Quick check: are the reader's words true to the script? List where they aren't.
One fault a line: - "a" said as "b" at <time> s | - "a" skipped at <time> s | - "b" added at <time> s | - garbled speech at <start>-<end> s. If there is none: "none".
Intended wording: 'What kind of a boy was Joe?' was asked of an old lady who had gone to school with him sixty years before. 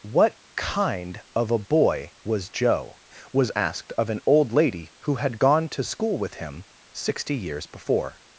none